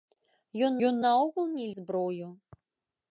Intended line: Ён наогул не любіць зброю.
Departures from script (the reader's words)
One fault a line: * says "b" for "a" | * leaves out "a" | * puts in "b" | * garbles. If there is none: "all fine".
* puts in "ён"
* leaves out "любіць"